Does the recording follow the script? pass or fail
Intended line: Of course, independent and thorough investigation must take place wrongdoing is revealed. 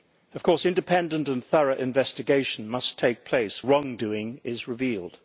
pass